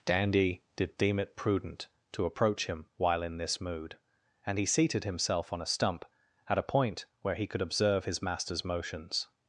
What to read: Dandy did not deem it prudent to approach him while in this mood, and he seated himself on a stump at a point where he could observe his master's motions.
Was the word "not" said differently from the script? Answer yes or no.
yes